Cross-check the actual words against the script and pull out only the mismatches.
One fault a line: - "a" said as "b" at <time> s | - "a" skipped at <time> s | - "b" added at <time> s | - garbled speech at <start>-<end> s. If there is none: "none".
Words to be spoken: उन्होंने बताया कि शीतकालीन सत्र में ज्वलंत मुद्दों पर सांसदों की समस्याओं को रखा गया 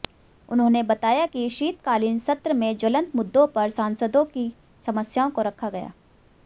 none